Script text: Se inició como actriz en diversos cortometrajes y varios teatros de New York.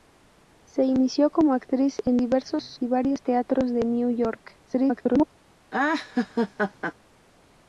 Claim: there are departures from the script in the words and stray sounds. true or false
true